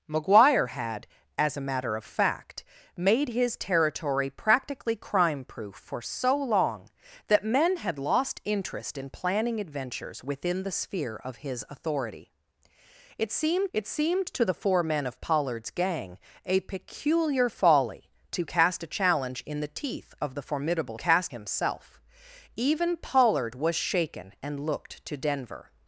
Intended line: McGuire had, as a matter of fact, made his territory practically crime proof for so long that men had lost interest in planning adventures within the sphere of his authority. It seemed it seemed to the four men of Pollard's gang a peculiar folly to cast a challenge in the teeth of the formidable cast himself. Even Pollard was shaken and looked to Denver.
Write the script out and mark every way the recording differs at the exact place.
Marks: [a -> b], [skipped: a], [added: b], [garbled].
McGuire had, as a matter of fact, made his territory practically crime proof for so long that men had lost interest in planning adventures within the sphere of his authority. It seemed it seemed to the four men of Pollard's gang a peculiar folly to cast a challenge in the teeth of the formidable cast himself. Even Pollard was shaken and looked to Denver.